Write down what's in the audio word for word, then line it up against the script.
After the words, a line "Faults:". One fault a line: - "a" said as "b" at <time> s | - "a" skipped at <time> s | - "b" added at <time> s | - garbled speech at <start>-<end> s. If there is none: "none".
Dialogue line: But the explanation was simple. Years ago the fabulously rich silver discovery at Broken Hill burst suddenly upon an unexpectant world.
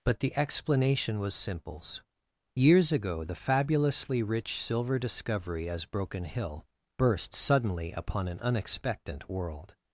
But the explanation was simples. Years ago the fabulously rich silver discovery as Broken Hill burst suddenly upon an unexpectant world.
Faults:
- "simple" said as "simples" at 1.4 s
- "at" said as "as" at 5.7 s